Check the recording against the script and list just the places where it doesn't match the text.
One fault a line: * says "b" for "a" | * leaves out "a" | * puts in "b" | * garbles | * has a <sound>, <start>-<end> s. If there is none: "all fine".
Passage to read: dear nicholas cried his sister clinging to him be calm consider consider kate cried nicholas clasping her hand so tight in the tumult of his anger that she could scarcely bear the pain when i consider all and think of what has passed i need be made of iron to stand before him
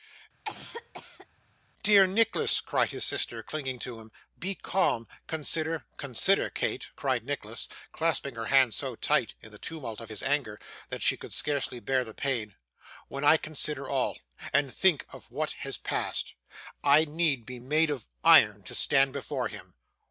* has a cough, 0.4-1.3 s